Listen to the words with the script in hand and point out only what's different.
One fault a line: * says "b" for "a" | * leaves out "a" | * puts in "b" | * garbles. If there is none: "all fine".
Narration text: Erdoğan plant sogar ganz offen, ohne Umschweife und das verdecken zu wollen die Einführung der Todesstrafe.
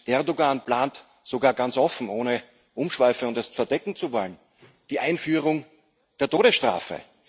all fine